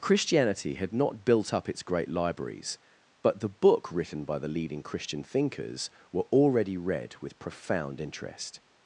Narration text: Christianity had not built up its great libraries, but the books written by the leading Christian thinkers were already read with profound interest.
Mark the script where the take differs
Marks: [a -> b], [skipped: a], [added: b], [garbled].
Christianity had not built up its great libraries, but the [books -> book] written by the leading Christian thinkers were already read with profound interest.